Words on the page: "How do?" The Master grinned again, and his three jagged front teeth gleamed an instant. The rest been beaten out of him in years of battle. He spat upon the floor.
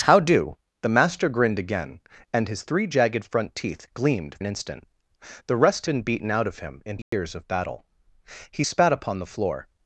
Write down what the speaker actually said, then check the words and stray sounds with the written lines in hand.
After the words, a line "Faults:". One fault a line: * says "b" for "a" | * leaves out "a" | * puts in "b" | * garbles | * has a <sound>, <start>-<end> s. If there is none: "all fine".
"How do?" The Master grinned again, and his three jagged front teeth gleamed an instant. The rest been beaten out of him in years of battle. He spat upon the floor.
Faults:
* has a dropout, 7.0-7.1 s